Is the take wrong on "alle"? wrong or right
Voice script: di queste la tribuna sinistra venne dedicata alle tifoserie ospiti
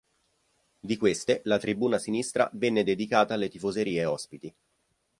right